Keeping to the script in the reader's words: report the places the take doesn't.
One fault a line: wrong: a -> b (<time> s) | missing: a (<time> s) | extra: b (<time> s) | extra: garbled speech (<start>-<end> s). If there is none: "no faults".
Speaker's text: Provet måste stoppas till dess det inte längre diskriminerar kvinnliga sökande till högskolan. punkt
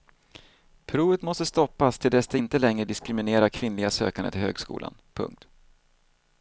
no faults